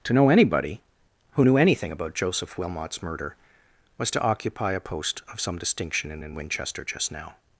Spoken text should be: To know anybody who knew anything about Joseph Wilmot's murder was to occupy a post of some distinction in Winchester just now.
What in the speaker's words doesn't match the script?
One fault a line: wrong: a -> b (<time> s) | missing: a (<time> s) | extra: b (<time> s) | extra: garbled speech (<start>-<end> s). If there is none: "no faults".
extra: in (6.2 s)